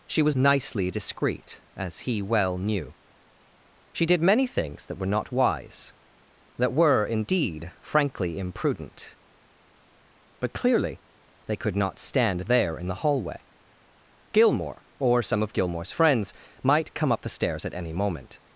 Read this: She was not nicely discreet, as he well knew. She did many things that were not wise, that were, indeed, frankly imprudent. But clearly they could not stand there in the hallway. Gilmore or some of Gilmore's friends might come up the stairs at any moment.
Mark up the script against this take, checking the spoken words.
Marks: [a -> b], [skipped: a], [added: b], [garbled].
She was [skipped: not] nicely discreet, as he well knew. She did many things that were not wise, that were, indeed, frankly imprudent. But clearly they could not stand there in the hallway. Gilmore or some of Gilmore's friends might come up the stairs at any moment.